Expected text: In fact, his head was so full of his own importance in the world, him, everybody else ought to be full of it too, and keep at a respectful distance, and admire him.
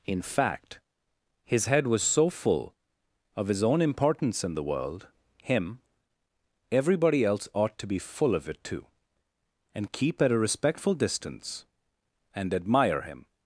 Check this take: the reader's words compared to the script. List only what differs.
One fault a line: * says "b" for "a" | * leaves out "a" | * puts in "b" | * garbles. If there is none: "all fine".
all fine